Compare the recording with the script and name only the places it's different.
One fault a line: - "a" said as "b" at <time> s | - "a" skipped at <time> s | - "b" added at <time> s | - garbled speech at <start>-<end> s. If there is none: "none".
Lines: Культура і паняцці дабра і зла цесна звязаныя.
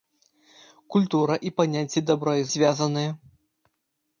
- "зла цесна" skipped at 2.5 s